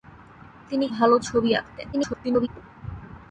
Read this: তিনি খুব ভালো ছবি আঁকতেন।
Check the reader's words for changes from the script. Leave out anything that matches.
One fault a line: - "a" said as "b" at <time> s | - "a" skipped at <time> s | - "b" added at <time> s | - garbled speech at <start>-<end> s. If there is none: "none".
- "খুব" skipped at 0.8 s
- garbled speech at 1.9-2.5 s